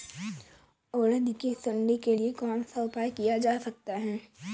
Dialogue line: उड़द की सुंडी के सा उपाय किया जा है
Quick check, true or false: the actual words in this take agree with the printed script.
false